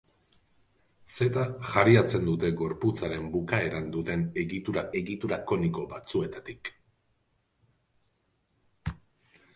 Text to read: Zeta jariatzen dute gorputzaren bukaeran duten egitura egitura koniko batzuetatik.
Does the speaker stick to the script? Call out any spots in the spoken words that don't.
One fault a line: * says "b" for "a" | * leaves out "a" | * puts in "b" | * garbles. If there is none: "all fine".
all fine